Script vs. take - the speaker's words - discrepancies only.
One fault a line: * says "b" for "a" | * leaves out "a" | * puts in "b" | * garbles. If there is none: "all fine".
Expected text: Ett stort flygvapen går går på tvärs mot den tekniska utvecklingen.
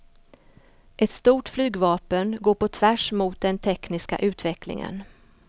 * leaves out "går"